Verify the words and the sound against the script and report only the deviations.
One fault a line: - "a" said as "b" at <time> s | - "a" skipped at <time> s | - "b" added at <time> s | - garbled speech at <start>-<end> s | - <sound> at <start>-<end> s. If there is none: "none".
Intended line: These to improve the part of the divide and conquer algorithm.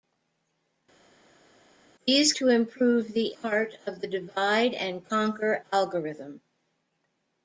none